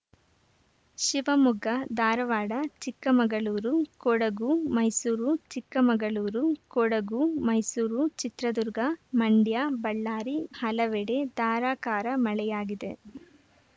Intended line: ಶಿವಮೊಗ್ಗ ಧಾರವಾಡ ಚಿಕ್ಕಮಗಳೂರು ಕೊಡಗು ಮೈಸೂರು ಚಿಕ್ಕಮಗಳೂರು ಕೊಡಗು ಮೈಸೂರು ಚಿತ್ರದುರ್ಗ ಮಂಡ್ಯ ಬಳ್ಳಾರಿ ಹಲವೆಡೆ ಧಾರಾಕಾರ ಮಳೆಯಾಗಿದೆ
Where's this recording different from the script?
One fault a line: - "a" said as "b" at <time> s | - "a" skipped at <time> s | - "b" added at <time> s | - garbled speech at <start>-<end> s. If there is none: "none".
none